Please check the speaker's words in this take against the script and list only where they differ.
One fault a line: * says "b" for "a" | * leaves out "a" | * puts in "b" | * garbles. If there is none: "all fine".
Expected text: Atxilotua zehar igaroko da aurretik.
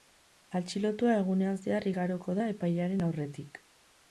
* puts in "egunean"
* puts in "epailearen"